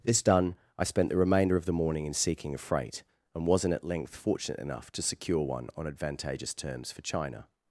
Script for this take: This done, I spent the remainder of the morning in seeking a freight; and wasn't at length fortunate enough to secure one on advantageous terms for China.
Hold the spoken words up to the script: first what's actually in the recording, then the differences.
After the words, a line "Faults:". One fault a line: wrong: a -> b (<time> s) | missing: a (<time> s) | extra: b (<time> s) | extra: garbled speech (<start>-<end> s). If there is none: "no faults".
This done, I spent the remainder of the morning in seeking a freight; and wasn't at length fortunate enough to secure one on advantageous terms for China.
Faults:
no faults